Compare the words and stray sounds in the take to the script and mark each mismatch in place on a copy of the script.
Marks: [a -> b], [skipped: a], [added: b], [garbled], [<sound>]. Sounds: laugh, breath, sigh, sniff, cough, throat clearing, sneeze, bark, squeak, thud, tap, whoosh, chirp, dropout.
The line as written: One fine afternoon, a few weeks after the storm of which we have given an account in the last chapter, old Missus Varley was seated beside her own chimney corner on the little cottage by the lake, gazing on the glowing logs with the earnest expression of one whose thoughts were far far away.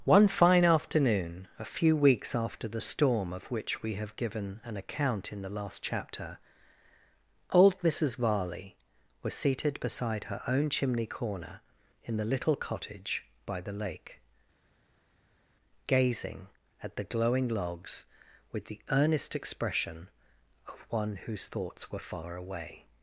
One fine afternoon, a few weeks after the storm of which we have given an account in the last chapter, old Missus Varley was seated beside her own chimney corner [on -> in] the little cottage by the lake, gazing [on -> at] the glowing logs with the earnest expression of one whose thoughts were far [skipped: far] away.